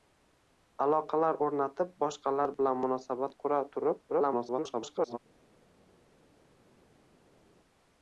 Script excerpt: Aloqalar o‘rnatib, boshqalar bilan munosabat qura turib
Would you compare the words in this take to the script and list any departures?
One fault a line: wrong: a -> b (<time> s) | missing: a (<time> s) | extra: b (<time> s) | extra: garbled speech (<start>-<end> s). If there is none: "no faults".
extra: garbled speech (4.1-5.2 s)